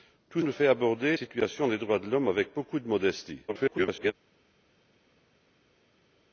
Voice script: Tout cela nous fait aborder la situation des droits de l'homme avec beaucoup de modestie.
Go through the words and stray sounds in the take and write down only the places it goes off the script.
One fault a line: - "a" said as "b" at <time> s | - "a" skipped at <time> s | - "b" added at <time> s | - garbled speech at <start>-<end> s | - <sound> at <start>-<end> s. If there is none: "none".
- "cela" skipped at 0.4 s
- "la" skipped at 1.2 s
- garbled speech at 3.5-4.1 s